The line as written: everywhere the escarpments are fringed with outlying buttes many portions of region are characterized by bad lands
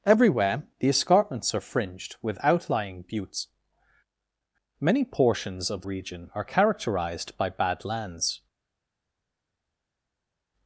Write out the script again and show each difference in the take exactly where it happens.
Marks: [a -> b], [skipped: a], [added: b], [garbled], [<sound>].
everywhere the escarpments are fringed with outlying buttes many portions of region are characterized by bad lands